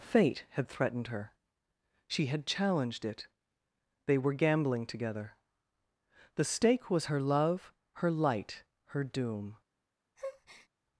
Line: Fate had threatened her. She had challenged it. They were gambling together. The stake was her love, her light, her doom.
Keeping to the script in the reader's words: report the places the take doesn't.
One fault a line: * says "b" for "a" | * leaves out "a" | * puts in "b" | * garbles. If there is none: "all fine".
all fine